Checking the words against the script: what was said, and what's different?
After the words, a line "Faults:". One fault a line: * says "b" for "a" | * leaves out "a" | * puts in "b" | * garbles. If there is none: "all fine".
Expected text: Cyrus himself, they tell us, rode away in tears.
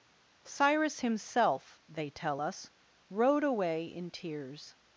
Cyrus himself, they tell us, rode away in tears.
Faults:
all fine